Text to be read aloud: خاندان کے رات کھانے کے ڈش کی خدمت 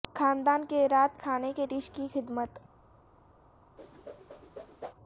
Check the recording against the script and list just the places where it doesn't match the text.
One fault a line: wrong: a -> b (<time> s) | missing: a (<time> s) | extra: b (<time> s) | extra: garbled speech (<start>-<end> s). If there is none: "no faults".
no faults